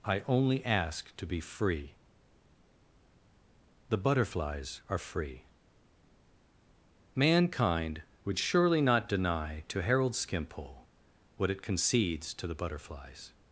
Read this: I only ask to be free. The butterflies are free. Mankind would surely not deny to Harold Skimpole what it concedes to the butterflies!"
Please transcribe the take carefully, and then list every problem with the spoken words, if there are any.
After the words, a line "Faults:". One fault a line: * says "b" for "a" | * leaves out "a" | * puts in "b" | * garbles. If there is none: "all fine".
I only ask to be free. The butterflies are free. Mankind would surely not deny to Harold Skimpole what it concedes to the butterflies!"
Faults:
all fine